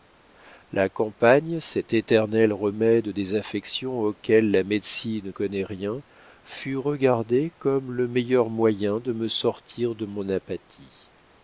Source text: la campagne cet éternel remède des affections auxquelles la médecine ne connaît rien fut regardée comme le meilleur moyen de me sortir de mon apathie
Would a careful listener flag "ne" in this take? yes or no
yes